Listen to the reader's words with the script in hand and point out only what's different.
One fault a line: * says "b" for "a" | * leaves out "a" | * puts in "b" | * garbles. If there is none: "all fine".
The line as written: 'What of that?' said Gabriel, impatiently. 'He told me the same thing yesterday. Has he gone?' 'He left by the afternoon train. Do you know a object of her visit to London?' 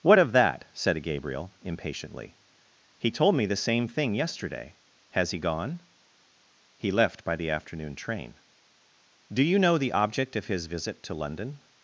* says "the" for "a"
* says "his" for "her"